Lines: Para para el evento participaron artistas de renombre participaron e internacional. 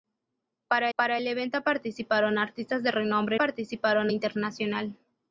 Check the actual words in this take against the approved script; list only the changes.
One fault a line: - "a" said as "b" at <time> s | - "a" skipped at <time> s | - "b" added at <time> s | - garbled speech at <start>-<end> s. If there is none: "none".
none